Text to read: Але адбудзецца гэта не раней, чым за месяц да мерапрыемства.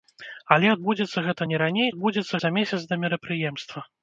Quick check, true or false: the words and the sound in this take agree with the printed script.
false